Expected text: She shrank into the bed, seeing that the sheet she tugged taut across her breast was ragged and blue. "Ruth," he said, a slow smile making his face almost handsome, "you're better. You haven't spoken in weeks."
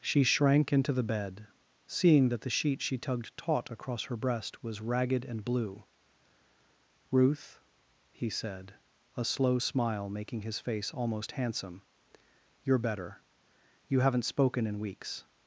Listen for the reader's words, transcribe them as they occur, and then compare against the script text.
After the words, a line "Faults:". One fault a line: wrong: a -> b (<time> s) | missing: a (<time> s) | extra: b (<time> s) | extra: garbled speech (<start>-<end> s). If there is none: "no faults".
She shrank into the bed, seeing that the sheet she tugged taut across her breast was ragged and blue. "Ruth," he said, a slow smile making his face almost handsome, "you're better. You haven't spoken in weeks."
Faults:
no faults